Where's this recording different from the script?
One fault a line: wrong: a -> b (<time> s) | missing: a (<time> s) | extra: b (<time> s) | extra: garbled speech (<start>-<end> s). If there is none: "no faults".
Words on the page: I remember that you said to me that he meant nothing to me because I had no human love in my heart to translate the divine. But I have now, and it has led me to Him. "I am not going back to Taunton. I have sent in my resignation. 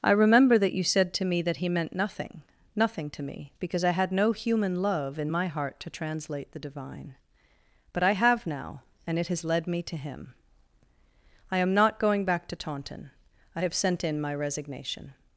extra: nothing (2.8 s)